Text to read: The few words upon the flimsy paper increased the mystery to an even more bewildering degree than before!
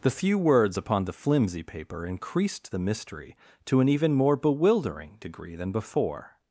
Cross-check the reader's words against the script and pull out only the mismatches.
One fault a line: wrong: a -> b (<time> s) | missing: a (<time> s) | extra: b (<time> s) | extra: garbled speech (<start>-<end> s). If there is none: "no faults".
no faults